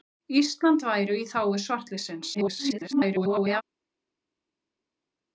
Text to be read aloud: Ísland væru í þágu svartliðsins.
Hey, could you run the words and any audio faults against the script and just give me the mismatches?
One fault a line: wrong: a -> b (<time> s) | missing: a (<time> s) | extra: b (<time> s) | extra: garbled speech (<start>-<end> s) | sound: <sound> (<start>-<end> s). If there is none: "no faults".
extra: garbled speech (2.3-3.6 s)